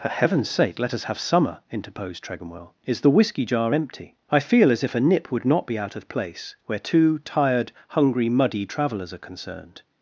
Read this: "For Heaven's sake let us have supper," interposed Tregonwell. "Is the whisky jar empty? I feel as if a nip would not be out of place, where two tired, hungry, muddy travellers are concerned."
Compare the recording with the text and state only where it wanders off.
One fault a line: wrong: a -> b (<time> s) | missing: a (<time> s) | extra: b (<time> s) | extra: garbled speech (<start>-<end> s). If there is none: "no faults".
wrong: supper -> summer (1.2 s)